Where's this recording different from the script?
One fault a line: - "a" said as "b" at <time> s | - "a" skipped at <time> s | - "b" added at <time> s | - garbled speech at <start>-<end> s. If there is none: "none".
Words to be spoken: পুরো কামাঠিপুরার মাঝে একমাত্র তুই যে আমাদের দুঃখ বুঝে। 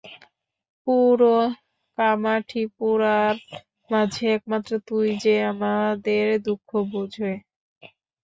none